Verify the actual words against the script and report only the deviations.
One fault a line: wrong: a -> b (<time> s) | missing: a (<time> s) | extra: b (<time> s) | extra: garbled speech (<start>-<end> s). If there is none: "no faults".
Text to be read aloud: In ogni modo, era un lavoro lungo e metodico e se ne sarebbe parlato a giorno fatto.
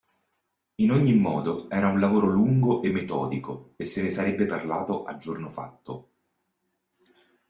no faults